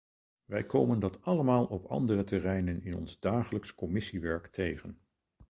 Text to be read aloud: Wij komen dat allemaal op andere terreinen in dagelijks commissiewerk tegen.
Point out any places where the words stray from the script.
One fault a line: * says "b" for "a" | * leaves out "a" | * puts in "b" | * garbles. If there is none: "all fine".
* puts in "ons"